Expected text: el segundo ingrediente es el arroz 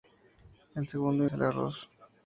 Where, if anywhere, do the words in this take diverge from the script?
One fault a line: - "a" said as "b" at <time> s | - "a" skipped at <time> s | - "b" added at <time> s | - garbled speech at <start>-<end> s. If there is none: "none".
- "ingrediente" skipped at 1.2 s